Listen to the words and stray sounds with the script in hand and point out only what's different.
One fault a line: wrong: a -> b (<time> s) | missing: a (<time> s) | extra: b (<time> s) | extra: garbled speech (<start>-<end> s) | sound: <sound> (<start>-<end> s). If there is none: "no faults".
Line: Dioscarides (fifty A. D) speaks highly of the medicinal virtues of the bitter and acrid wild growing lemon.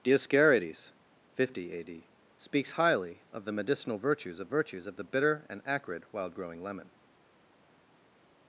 extra: virtues of (4.5 s)